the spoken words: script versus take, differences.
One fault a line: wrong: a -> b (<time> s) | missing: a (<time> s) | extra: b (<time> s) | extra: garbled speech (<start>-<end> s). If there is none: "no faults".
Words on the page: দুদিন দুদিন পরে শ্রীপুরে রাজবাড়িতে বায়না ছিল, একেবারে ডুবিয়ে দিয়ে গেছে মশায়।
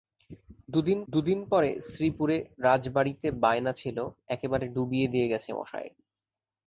no faults